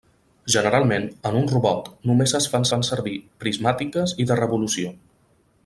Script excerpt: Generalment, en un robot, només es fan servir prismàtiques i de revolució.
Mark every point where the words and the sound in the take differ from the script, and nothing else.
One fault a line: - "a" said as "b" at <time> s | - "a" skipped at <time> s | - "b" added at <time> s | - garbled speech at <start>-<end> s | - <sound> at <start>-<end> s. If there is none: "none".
- "fan" added at 2.7 s